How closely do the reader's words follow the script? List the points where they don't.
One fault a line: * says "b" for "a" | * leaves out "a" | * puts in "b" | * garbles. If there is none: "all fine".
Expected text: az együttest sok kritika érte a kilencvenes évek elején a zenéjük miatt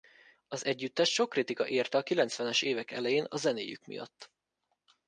all fine